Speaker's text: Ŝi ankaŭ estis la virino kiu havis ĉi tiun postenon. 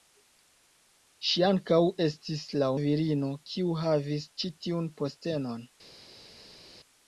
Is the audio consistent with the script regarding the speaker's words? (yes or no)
yes